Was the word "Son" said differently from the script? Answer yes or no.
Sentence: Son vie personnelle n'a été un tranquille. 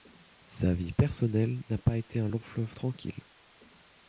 yes